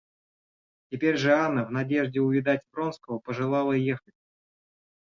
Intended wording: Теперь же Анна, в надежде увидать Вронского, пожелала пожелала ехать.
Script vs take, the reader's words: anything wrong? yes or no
yes